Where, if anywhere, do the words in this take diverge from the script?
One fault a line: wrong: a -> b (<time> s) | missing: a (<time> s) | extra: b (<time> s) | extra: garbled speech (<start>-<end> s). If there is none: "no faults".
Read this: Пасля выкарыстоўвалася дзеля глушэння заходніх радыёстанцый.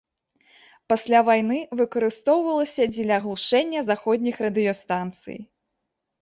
extra: вайны (1.3 s)